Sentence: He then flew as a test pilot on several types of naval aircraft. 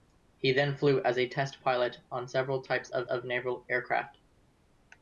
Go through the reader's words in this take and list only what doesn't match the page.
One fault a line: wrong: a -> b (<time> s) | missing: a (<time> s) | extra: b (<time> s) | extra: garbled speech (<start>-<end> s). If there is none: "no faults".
extra: of (3.0 s)